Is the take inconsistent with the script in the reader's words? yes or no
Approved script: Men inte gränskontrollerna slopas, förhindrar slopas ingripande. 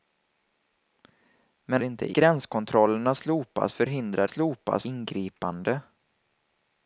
no